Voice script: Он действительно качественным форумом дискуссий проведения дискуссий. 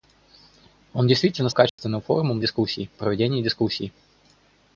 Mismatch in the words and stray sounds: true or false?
true